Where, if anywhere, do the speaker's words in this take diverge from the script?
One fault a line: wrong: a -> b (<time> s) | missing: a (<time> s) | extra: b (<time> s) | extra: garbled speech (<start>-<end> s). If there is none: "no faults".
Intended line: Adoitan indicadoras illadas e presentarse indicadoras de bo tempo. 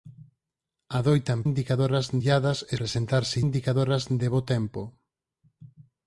no faults